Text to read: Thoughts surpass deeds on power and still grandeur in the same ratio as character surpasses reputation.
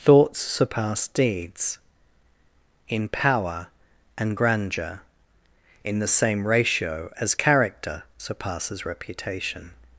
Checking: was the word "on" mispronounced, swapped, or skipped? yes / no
yes